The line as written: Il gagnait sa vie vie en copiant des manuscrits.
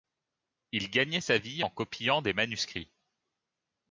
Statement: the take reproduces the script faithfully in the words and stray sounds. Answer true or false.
false